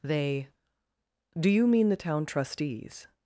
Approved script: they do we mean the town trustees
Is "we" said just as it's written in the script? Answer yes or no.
no